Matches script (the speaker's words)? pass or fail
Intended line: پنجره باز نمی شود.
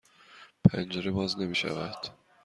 pass